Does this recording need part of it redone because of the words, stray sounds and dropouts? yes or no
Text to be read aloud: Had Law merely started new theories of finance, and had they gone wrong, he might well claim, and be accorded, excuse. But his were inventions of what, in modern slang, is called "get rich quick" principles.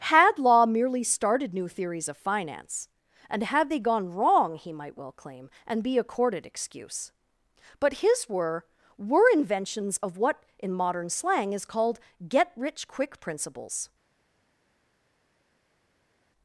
yes